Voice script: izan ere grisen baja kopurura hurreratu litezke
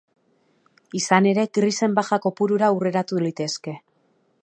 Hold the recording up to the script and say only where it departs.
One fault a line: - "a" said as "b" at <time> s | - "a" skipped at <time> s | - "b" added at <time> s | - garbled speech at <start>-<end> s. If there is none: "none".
none